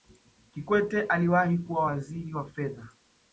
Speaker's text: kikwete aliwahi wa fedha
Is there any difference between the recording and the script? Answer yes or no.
yes